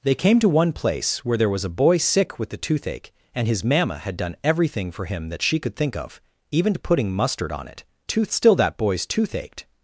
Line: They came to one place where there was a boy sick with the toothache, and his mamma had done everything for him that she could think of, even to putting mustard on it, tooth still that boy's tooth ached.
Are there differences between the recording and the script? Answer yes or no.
no